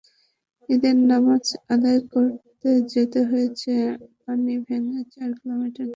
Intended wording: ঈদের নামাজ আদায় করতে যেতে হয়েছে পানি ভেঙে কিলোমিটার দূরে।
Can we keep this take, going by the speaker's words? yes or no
no